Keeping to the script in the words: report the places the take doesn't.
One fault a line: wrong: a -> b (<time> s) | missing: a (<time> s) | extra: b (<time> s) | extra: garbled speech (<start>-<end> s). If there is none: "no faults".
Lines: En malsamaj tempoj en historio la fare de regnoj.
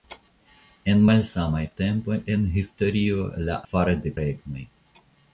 no faults